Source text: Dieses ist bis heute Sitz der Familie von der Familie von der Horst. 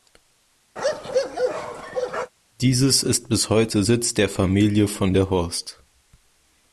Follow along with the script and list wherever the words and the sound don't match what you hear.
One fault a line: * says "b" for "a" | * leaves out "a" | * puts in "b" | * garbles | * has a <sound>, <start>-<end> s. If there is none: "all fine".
* has a bark, 0.8-2.3 s
* leaves out "Familie von der"